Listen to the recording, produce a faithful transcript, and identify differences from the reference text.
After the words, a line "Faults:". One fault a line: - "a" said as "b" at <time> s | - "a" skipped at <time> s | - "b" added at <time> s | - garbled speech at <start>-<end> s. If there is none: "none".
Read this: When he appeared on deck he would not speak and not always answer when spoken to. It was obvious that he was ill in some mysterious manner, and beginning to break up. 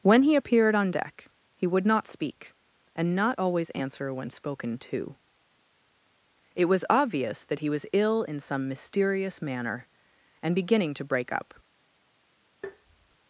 When he appeared on deck he would not speak and not always answer when spoken to. It was obvious that he was ill in some mysterious manner, and beginning to break up.
Faults:
none